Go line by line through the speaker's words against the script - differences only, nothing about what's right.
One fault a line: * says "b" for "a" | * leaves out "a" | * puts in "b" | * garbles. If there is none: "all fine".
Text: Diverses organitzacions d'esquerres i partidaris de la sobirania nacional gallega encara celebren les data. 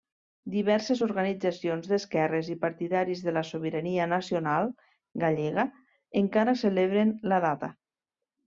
* says "la" for "les"